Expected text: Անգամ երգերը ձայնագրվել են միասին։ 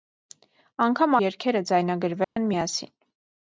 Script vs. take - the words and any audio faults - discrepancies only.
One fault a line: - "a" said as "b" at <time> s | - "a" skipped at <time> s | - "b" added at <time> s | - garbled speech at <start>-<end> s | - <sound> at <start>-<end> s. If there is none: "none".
- dropout at 2.2-2.4 s